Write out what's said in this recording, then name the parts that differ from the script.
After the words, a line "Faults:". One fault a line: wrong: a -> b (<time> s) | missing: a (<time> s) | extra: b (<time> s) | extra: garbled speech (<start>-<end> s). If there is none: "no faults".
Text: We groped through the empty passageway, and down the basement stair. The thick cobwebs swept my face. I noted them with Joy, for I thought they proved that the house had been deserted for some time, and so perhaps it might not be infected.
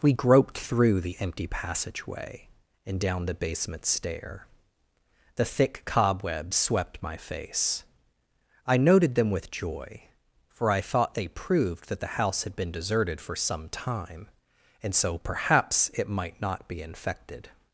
We groped through the empty passageway, and down the basement stair. The thick cobwebs swept my face. I noted them with Joy, for I thought they proved that the house had been deserted for some time, and so perhaps it might not be infected.
Faults:
no faults